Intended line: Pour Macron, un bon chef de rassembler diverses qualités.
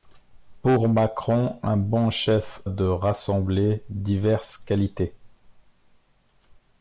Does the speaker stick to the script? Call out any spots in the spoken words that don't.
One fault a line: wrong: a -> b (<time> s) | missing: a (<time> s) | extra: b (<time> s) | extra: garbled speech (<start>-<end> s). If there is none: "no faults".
no faults